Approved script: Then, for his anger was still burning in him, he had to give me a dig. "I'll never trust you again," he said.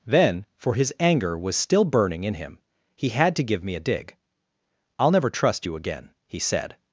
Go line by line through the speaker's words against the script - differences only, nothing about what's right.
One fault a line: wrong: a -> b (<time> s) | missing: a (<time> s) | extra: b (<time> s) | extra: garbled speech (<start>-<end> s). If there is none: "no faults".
no faults